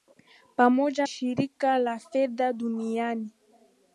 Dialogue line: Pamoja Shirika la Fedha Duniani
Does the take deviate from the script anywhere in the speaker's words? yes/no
no